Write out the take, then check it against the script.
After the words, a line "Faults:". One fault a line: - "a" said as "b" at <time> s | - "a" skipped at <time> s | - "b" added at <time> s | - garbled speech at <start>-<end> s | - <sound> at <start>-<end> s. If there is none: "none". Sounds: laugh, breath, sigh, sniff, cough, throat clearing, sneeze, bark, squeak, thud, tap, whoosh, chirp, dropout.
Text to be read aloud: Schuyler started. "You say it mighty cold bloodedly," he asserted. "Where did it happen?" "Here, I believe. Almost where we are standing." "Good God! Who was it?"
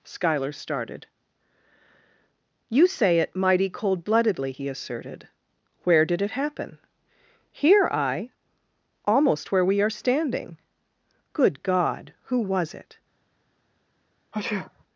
Schuyler started. "You say it mighty cold bloodedly," he asserted. "Where did it happen?" "Here, I. Almost where we are standing." "Good God! Who was it?"
Faults:
- "believe" skipped at 8.3 s
- sneeze at 14.3-14.8 s